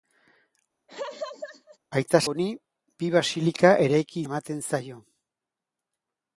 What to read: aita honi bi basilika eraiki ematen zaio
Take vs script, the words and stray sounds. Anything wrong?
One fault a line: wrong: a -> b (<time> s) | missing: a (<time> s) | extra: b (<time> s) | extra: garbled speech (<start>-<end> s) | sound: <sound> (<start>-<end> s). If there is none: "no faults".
sound: laugh (0.9-1.8 s)